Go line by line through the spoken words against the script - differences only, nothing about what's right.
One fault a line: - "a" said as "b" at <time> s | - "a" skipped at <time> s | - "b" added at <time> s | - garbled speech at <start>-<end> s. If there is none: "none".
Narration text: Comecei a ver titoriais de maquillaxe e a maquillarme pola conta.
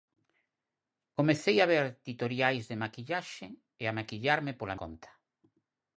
none